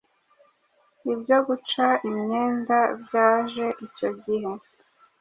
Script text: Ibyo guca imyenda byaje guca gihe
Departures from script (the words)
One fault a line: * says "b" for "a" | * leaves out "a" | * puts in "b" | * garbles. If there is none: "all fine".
* says "icyo" for "guca"